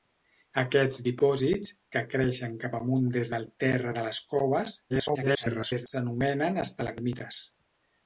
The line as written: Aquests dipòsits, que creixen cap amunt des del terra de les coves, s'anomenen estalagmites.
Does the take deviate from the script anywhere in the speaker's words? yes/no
yes